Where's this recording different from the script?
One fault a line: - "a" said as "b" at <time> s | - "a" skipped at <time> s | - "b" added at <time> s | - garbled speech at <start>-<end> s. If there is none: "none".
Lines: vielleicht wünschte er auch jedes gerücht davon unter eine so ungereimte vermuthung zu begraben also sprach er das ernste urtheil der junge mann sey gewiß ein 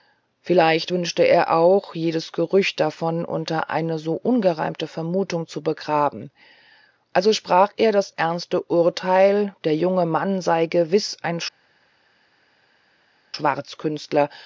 none